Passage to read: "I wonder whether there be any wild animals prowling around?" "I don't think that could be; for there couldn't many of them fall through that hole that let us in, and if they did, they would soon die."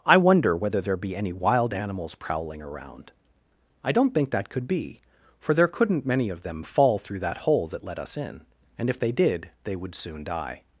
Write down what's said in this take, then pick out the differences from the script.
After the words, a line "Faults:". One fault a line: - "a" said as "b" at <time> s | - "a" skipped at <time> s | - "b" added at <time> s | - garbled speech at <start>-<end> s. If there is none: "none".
"I wonder whether there be any wild animals prowling around?" "I don't think that could be; for there couldn't many of them fall through that hole that let us in, and if they did, they would soon die."
Faults:
none